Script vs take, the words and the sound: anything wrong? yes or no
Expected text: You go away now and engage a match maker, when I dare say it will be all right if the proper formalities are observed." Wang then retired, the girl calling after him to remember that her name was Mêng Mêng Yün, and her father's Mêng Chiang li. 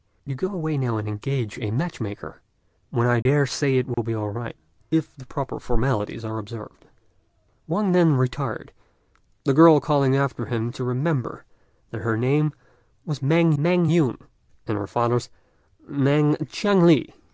yes